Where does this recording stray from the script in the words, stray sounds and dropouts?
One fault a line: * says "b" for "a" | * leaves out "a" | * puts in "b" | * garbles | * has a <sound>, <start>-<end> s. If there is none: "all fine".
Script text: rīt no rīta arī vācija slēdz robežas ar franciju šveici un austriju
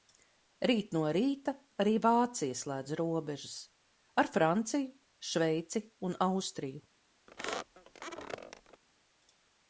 * has a squeak, 7.3-8.8 s